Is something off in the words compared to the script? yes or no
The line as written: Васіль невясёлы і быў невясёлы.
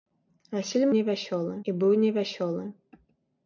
no